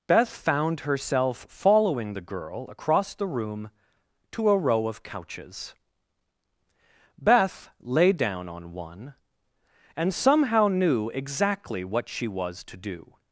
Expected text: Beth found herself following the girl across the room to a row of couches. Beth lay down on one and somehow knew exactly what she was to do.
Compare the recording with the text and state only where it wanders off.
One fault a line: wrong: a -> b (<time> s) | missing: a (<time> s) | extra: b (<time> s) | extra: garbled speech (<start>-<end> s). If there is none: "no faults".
no faults